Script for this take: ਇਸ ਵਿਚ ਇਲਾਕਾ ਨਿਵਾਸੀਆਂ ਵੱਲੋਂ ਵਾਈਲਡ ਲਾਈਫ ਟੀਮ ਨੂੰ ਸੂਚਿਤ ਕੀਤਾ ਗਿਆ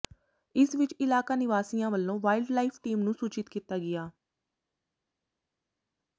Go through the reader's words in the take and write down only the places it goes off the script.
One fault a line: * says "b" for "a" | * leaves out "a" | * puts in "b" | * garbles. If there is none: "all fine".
all fine